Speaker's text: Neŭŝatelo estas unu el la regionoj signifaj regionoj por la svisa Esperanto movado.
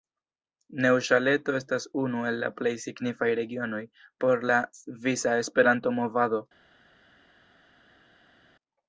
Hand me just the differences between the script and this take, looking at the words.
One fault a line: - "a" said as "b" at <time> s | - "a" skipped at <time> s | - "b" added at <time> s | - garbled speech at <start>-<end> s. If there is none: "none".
- "regionoj" said as "plej" at 2.6 s